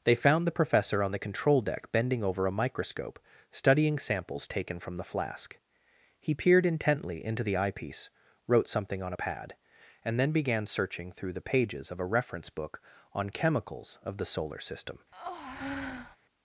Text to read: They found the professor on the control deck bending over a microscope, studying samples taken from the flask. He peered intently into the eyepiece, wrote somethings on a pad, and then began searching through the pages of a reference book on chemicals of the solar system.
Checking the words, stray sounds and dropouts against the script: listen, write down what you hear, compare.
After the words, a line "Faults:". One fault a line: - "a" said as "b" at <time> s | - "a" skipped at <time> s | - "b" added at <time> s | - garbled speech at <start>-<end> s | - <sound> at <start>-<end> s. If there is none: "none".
They found the professor on the control deck bending over a microscope, studying samples taken from the flask. He peered intently into the eyepiece, wrote something on a pad, and then began searching through the pages of a reference book on chemicals of the solar system.
Faults:
- "somethings" said as "something" at 8.7 s
- breath at 15.1-16.2 s